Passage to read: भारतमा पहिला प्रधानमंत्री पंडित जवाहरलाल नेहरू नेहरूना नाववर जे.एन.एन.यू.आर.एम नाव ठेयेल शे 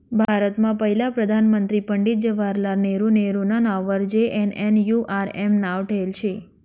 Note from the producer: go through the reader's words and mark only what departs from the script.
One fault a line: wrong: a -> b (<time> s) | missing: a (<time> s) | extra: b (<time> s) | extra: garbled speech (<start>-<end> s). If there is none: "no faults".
no faults